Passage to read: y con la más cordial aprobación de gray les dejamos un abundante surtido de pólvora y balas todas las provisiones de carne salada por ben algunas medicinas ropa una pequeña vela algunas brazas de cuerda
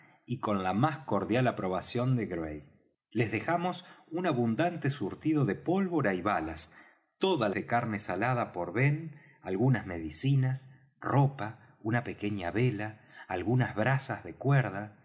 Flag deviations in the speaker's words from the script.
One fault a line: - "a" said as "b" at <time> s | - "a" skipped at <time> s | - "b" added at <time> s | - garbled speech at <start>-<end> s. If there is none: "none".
- "las provisiones" skipped at 7.5 s